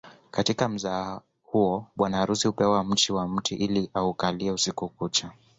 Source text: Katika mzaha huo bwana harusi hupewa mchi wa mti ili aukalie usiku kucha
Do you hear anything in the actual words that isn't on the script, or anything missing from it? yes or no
no